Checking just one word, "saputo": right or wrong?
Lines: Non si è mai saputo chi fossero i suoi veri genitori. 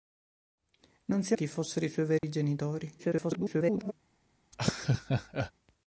wrong